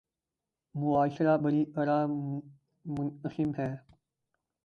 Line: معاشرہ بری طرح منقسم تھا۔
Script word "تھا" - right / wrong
wrong